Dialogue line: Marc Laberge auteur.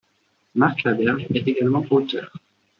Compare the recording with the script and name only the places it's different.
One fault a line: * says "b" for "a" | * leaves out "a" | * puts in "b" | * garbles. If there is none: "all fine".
* puts in "est également"